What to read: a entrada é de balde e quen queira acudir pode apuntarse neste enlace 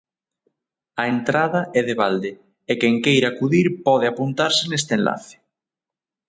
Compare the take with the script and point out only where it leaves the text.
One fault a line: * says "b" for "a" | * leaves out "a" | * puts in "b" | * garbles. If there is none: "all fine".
all fine